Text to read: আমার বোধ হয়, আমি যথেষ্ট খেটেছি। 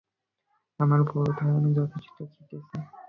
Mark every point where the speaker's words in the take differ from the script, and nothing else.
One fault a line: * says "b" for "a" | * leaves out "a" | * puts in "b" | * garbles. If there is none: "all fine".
all fine